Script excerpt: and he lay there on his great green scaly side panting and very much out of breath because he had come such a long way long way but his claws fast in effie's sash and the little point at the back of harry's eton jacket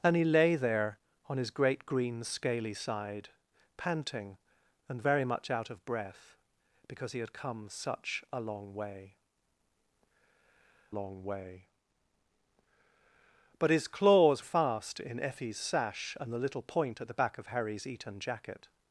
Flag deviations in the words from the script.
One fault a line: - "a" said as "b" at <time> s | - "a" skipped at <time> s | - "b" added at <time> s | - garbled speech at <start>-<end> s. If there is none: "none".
none